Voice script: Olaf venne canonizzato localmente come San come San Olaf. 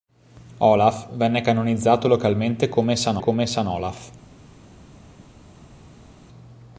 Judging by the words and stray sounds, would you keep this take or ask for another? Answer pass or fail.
pass